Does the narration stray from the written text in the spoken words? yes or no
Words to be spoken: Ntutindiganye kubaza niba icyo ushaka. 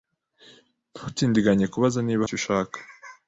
no